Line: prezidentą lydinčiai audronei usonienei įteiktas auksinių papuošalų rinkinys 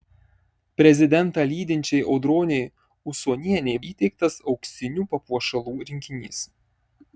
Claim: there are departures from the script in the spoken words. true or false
false